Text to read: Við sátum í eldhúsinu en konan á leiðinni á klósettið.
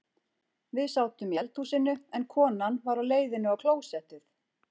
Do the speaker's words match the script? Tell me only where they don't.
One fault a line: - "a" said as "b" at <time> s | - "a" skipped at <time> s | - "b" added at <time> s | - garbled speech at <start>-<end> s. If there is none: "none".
- "var" added at 2.9 s